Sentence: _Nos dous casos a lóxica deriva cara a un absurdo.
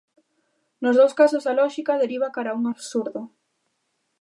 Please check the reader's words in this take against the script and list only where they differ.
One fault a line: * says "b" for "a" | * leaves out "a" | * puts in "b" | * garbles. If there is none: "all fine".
all fine